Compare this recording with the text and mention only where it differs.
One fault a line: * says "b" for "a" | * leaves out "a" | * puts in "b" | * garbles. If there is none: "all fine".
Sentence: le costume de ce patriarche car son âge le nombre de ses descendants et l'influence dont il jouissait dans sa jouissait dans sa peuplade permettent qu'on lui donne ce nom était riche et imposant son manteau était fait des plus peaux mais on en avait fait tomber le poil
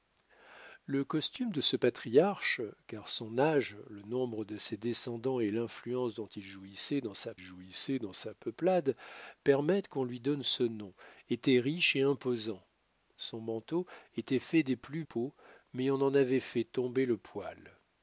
all fine